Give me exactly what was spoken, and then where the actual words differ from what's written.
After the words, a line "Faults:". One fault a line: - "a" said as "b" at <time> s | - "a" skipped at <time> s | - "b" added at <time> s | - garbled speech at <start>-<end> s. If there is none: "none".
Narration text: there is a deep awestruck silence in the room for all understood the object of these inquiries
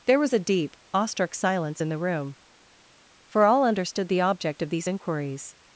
there was a deep awestruck silence in the room for all understood the object of these inquiries
Faults:
- "is" said as "was" at 0.2 s